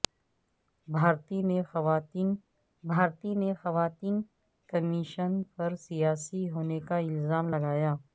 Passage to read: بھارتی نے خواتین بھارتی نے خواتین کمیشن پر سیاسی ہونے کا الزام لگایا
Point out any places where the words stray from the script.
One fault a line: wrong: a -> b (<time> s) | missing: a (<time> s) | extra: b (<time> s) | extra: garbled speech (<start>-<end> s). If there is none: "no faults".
no faults